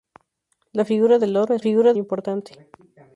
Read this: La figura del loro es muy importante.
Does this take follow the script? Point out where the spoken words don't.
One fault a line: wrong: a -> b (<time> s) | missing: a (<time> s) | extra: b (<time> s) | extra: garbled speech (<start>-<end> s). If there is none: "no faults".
wrong: muy -> figura (1.6 s)